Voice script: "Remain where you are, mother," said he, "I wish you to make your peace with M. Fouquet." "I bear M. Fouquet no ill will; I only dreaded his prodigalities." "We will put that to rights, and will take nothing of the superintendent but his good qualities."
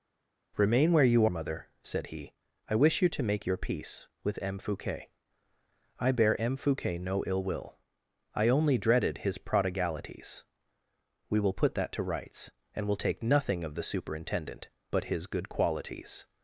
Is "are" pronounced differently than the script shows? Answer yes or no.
yes